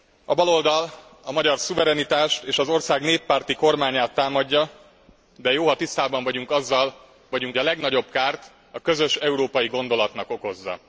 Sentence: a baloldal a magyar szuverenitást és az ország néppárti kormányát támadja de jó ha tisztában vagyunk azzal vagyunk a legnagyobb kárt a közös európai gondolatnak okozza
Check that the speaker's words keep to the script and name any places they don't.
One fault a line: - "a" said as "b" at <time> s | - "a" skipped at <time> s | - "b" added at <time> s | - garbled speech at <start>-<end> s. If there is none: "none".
none